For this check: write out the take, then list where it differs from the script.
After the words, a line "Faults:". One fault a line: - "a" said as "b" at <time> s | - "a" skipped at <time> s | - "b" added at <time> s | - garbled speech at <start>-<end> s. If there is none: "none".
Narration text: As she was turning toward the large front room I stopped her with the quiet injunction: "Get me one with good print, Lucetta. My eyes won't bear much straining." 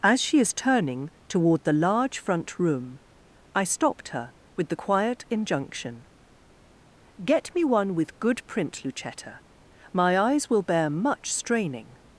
As she is turning toward the large front room I stopped her with the quiet injunction: "Get me one with good print, Lucetta. My eyes will bear much straining."
Faults:
- "was" said as "is" at 0.4 s
- "won't" said as "will" at 10.5 s